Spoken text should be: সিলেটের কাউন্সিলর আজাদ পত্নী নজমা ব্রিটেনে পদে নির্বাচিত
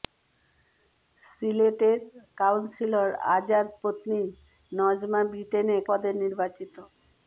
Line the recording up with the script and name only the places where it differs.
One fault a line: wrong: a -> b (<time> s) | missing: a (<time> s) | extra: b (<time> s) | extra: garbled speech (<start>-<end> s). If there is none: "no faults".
no faults